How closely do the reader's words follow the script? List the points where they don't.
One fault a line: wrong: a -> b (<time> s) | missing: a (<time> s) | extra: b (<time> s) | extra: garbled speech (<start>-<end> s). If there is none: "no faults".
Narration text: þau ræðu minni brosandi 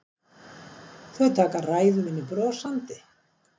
extra: taka (1.4 s)